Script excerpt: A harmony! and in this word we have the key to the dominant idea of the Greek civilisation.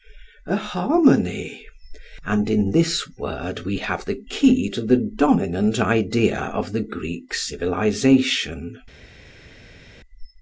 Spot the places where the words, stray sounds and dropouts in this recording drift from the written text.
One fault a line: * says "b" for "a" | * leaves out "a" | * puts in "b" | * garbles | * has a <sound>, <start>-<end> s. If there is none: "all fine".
all fine